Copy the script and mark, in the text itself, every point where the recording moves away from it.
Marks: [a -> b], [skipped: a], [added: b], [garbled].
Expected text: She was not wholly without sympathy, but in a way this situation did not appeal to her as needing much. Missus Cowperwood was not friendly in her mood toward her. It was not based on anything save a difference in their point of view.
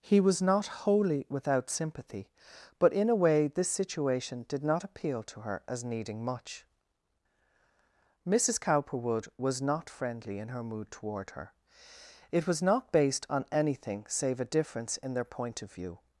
[She -> He] was not wholly without sympathy, but in a way this situation did not appeal to her as needing much. Missus Cowperwood was not friendly in her mood toward her. It was not based on anything save a difference in their point of view.